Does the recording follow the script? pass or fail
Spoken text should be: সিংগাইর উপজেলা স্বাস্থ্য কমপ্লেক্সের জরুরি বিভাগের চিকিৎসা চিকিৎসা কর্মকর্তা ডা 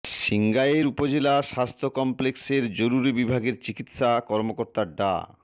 fail